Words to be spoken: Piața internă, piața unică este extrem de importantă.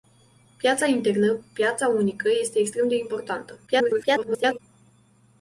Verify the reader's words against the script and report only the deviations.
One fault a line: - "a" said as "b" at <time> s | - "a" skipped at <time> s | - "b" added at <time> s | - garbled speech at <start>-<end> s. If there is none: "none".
- garbled speech at 3.7-4.6 s